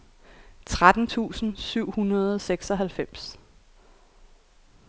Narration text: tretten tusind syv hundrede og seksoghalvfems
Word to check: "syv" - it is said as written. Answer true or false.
true